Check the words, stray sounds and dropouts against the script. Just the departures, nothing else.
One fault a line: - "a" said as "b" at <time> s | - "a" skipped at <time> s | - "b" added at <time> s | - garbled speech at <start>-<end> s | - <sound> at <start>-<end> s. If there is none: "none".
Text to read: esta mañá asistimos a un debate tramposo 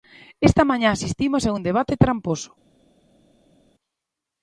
none